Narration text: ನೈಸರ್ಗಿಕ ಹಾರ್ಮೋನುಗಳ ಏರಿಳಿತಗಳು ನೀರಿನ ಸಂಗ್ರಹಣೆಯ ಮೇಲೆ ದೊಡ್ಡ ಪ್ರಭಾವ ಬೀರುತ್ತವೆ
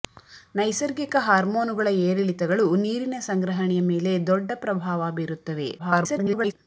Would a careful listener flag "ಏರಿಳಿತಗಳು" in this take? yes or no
no